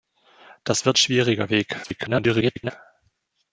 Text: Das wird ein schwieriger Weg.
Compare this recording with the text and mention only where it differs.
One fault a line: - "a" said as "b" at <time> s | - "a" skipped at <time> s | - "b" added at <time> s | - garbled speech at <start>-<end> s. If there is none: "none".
- "ein" skipped at 1.0 s
- garbled speech at 1.8-2.7 s